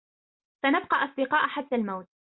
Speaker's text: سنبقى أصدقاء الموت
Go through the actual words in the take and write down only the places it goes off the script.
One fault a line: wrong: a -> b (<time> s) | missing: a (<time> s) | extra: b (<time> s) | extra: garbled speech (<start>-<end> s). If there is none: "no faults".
extra: حتى (1.5 s)